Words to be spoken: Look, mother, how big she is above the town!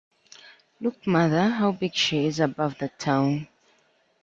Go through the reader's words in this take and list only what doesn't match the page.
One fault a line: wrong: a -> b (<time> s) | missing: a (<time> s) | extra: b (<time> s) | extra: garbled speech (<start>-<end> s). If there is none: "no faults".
no faults